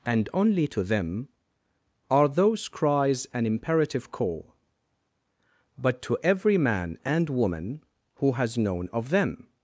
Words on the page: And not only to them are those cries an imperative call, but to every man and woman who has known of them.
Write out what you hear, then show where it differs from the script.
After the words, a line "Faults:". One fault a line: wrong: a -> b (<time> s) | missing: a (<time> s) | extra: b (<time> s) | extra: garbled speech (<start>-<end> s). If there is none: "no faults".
And only to them are those cries an imperative call, but to every man and woman who has known of them.
Faults:
missing: not (0.3 s)